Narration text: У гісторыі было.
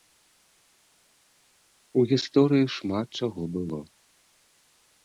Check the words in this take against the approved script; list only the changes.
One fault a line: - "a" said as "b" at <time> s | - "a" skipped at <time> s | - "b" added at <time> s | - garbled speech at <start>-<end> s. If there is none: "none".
- "шмат чаго" added at 2.8 s